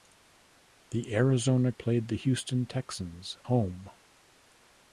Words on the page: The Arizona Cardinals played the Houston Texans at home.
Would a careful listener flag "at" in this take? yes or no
yes